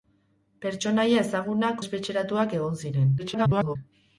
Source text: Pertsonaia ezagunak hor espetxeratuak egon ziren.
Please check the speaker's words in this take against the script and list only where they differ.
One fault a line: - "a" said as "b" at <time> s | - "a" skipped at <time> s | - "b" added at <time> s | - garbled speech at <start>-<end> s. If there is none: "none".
- "hor" skipped at 1.8 s
- garbled speech at 3.2-3.8 s